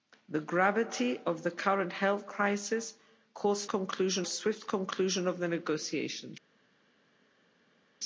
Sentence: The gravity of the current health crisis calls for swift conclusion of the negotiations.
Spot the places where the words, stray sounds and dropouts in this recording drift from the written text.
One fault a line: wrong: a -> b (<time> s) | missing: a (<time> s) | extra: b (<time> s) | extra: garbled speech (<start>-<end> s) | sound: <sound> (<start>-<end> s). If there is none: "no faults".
wrong: for -> conclusion (3.7 s)